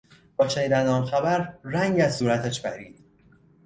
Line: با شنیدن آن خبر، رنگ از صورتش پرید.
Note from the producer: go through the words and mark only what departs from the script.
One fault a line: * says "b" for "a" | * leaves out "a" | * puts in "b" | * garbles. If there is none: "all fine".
all fine